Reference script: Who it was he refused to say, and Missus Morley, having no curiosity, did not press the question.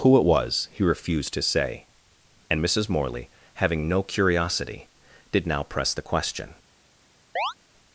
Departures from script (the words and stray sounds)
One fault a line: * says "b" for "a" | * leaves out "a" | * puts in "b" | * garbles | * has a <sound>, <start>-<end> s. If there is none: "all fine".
* says "now" for "not"
* has a chirp, 7.4-7.5 s